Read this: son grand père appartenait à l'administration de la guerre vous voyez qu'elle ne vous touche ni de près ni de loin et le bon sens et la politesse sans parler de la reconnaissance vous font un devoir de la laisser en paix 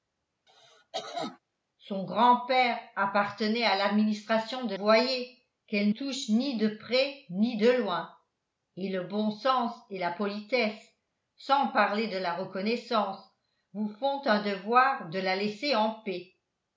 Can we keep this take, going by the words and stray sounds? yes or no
no